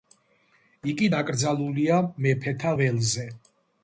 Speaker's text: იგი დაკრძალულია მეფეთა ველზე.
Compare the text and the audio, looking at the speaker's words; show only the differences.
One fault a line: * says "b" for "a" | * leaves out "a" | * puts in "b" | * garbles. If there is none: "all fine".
all fine